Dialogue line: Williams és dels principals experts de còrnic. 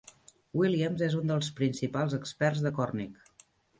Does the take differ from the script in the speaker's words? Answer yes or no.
yes